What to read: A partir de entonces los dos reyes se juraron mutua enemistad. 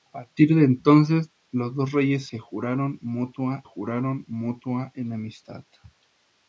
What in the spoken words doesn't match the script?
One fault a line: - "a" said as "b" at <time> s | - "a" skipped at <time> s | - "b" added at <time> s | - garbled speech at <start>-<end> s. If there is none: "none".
- "juraron mutua" added at 3.6 s